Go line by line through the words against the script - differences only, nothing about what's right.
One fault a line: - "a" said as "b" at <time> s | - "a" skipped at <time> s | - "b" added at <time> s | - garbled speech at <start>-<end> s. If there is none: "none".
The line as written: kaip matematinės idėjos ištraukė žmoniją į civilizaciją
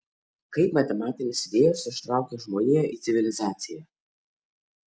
none